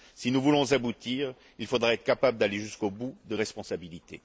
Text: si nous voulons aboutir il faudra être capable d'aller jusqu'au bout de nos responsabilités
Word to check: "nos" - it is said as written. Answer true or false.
false